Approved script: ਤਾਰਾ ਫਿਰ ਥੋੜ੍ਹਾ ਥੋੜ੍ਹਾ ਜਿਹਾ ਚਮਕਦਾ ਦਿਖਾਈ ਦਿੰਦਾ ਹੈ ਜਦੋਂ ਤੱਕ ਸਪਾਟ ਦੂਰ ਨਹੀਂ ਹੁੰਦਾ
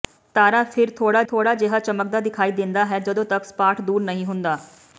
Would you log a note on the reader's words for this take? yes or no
no